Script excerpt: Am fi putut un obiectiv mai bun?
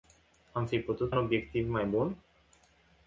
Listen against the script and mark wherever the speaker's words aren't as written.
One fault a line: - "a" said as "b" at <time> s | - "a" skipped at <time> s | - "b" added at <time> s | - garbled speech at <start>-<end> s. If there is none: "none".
none